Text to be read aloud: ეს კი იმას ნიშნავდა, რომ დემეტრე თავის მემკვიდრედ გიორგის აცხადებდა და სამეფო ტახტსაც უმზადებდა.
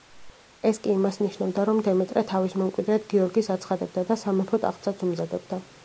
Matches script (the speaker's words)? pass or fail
pass